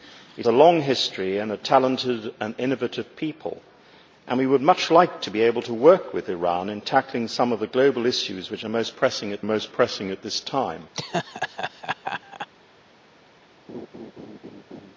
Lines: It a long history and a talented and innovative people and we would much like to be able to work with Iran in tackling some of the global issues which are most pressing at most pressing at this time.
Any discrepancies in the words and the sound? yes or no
yes